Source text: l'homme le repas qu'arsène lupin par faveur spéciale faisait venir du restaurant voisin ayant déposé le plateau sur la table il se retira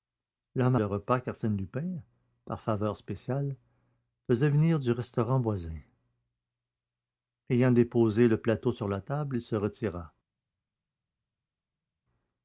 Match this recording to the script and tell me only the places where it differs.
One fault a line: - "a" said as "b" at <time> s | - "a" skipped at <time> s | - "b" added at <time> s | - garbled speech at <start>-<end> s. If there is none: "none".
none